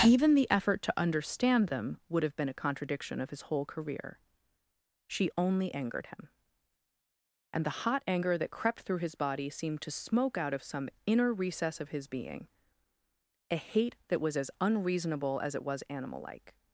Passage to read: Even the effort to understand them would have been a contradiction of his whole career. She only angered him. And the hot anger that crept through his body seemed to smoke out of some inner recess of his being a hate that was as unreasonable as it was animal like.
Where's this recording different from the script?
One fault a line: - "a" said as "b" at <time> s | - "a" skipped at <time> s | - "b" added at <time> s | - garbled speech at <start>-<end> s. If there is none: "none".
none